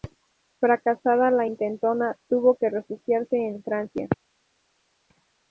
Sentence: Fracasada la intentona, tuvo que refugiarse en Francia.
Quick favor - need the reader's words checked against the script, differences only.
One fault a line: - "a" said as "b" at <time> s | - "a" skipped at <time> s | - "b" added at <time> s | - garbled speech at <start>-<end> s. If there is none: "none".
none